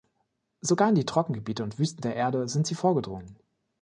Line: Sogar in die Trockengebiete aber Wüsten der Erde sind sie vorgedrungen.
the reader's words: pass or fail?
fail